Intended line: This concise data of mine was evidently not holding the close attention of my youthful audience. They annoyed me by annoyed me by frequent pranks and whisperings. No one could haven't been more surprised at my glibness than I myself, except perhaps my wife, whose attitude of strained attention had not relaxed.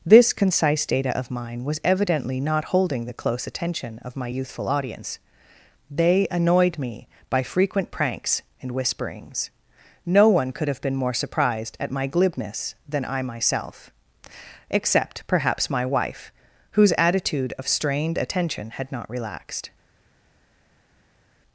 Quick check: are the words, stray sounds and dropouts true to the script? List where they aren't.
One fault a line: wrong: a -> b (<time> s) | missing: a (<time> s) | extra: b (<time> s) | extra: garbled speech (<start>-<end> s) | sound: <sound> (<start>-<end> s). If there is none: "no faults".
missing: annoyed me by (7.4 s)
wrong: haven't -> have (10.7 s)